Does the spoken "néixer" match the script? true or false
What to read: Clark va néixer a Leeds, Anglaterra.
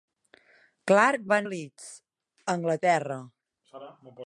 false